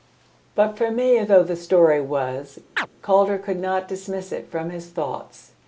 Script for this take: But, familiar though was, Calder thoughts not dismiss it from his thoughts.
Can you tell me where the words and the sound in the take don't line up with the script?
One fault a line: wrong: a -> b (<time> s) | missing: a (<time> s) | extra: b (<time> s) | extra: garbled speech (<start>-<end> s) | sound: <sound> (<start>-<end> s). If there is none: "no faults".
extra: the story (1.4 s)
sound: chirp (2.8-2.9 s)
wrong: thoughts -> could (3.4 s)